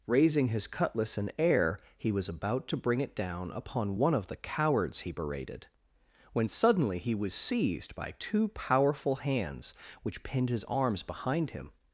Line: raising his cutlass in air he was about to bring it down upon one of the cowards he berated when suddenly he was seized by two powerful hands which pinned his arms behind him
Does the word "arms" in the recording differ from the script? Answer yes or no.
no